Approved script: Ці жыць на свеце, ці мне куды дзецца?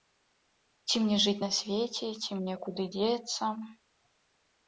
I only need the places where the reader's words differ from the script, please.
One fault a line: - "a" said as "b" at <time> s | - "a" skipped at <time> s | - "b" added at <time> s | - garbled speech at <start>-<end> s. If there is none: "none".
- "мне" added at 1.0 s